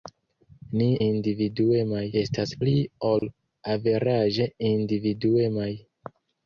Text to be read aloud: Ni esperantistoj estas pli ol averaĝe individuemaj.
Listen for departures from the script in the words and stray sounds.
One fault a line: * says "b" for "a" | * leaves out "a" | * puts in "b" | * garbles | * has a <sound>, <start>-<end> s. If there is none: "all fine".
* says "individuemaj" for "esperantistoj"
* has a dropout, 3.2-3.2 s